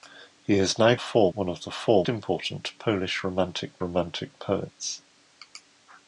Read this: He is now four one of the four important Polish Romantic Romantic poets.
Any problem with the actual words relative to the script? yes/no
no